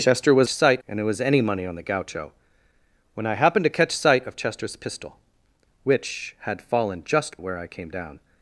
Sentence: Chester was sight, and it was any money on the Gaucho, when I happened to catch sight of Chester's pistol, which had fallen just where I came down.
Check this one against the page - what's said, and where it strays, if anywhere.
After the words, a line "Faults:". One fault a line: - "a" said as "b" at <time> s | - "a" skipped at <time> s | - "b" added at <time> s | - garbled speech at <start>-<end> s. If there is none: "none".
Chester was sight, and it was any money on the Gaucho, when I happened to catch sight of Chester's pistol, which had fallen just where I came down.
Faults:
none